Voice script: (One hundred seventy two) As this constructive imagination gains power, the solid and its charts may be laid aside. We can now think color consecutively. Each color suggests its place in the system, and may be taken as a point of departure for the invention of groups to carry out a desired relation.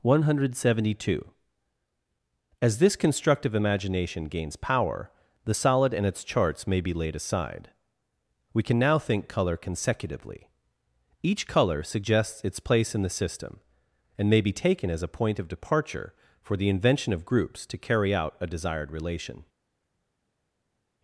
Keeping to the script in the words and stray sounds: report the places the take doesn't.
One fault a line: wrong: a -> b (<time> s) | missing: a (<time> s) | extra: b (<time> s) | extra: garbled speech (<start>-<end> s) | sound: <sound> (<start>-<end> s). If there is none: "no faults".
no faults